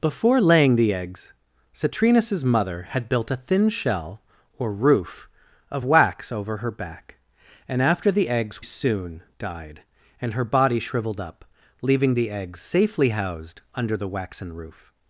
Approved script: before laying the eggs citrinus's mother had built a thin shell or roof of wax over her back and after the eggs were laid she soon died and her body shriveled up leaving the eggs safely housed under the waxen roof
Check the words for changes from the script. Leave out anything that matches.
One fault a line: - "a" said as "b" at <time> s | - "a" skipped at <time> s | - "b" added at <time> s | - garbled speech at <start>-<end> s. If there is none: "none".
- "were laid she" skipped at 8.6 s